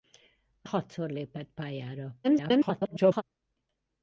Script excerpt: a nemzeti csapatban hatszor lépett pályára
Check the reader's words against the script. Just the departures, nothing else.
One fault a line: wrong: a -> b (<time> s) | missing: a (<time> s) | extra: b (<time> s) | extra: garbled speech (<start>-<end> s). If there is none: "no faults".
missing: nemzeti csapatban (0.7 s)
extra: garbled speech (2.2-3.2 s)